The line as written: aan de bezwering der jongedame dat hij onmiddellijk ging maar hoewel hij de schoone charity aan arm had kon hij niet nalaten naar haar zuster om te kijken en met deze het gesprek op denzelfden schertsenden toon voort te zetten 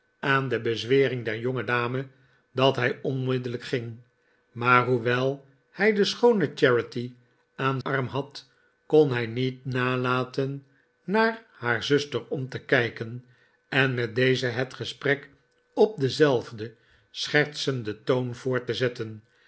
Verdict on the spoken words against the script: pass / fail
pass